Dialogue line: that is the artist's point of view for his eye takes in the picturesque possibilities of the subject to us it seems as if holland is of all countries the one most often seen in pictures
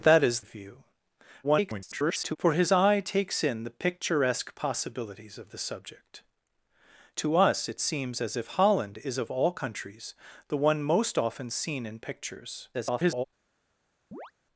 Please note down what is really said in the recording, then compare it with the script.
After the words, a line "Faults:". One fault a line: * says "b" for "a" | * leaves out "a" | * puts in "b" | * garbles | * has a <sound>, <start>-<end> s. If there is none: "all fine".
that is of view [garbled] for his eye takes in the picturesque possibilities of the subject to us it seems as if holland is of all countries the one most often seen in pictures [garbled]
Faults:
* leaves out "the artist's point"
* garbles
* garbles
* has a chirp, 14.1-14.3 s